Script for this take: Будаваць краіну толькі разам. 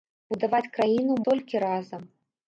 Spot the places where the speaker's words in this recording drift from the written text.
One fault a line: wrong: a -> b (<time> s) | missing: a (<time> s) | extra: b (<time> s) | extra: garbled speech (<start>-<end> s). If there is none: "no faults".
no faults